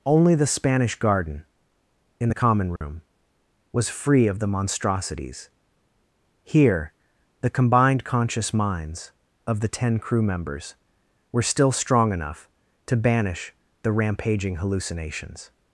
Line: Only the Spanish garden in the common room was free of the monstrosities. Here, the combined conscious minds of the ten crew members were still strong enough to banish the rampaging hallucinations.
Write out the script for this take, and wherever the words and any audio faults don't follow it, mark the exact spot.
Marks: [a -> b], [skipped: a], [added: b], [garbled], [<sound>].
Only the Spanish garden in the common room [dropout] was free of the monstrosities. Here, the combined conscious minds of the ten crew members were still strong enough to banish the rampaging hallucinations.